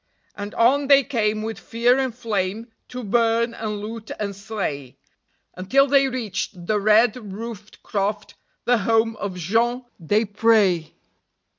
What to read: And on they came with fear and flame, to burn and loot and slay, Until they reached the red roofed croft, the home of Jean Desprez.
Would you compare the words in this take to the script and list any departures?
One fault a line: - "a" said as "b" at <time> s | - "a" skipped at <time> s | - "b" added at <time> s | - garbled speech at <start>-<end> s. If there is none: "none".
none